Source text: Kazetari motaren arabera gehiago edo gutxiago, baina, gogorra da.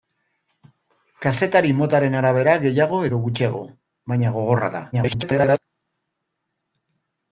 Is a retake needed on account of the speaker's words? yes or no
yes